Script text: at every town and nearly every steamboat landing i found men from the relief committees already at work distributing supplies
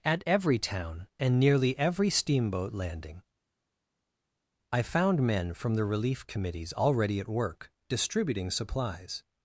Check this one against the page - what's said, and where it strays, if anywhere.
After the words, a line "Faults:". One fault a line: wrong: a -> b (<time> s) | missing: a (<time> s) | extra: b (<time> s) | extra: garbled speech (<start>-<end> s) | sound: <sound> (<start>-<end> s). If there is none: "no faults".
at every town and nearly every steamboat landing i found men from the relief committees already at work distributing supplies
Faults:
no faults